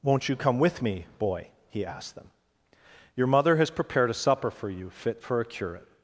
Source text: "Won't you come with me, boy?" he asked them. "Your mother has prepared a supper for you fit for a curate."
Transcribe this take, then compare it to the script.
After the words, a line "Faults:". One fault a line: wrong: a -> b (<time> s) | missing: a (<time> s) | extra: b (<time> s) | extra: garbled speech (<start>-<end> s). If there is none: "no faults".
"Won't you come with me, boy?" he asked them. "Your mother has prepared a supper for you fit for a curate."
Faults:
no faults